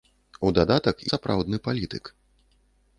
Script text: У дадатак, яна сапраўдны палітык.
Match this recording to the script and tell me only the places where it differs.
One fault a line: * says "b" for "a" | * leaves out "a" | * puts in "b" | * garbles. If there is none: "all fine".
* leaves out "яна"